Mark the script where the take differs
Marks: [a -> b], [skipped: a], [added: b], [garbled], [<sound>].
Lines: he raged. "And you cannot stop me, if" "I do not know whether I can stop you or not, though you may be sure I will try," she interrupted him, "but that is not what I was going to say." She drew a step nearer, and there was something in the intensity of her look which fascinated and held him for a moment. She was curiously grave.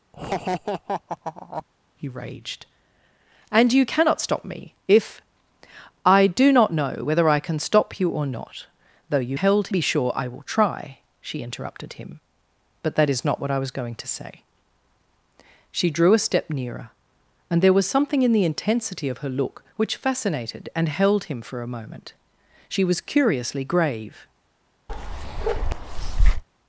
[laugh] he raged. "And you cannot stop me, if" "I do not know whether I can stop you or not, though you [may -> held] be sure I will try," she interrupted him, "but that is not what I was going to say." She drew a step nearer, and there was something in the intensity of her look which fascinated and held him for a moment. She was curiously grave. [bark]